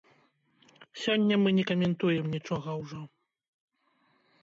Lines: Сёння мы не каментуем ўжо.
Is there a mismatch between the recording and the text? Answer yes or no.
yes